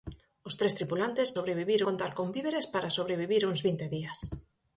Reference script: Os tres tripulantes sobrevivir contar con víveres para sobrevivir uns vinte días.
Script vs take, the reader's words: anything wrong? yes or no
no